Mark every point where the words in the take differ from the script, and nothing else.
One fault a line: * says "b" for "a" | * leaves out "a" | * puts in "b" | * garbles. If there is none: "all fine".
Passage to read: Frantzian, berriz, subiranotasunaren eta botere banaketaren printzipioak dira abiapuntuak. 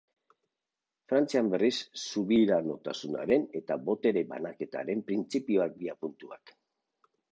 * leaves out "dira"